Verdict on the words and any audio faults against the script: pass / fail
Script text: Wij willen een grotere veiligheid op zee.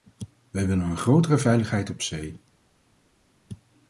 pass